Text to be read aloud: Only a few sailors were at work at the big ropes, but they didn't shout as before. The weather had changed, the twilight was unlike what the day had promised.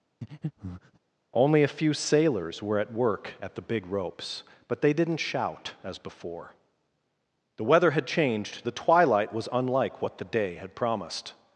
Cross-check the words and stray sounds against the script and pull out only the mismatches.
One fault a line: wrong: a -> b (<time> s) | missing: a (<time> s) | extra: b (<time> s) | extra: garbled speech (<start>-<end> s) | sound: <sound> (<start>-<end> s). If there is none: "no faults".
sound: breath (0.2-1.0 s)